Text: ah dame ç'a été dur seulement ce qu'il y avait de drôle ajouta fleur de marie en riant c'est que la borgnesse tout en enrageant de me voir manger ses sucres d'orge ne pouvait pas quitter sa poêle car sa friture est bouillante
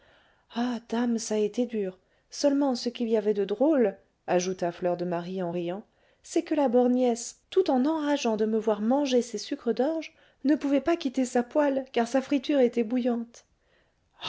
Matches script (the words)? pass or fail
fail